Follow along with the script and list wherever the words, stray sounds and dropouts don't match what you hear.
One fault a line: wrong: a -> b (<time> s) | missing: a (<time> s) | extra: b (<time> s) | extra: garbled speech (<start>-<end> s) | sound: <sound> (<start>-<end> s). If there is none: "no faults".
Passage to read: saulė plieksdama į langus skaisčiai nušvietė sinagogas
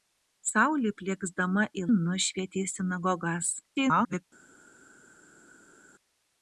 missing: langus skaisčiai (1.8 s)
extra: garbled speech (3.6-4.2 s)